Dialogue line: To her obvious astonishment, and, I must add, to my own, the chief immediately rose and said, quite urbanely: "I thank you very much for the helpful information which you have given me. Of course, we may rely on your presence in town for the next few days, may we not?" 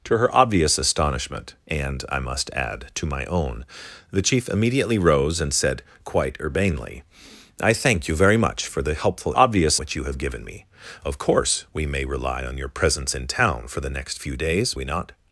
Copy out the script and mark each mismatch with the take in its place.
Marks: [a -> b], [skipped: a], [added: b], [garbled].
To her obvious astonishment, and, I must add, to my own, the chief immediately rose and said, quite urbanely: "I thank you very much for the helpful [information -> obvious] which you have given me. Of course, we may rely on your presence in town for the next few days, [skipped: may] we not?"